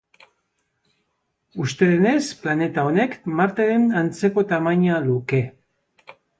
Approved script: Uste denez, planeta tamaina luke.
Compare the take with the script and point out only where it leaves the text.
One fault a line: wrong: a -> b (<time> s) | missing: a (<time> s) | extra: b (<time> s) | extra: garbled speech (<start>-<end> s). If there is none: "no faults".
extra: honek Marteren antzeko (2.9 s)